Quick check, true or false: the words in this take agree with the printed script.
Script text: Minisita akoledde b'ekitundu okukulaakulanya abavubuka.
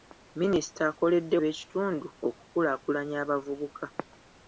true